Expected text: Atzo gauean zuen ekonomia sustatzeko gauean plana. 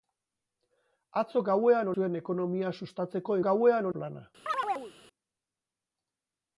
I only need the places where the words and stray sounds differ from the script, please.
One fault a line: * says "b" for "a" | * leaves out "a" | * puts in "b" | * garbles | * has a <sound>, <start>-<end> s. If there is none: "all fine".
* has a chirp, 4.5-4.9 s